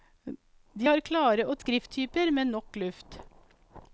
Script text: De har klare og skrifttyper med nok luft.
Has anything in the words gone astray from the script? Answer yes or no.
no